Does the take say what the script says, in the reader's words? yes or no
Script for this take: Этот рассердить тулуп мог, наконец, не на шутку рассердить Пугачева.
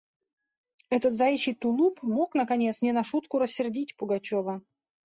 no